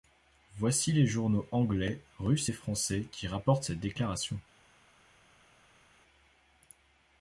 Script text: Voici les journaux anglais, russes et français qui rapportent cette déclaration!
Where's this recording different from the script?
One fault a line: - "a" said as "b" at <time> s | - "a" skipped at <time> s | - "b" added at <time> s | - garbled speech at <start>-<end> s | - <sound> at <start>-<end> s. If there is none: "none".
none